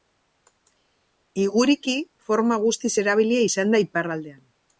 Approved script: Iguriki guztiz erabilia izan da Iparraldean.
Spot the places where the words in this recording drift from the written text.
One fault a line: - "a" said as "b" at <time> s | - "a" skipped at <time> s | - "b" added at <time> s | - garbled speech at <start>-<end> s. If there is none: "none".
- "forma" added at 2.3 s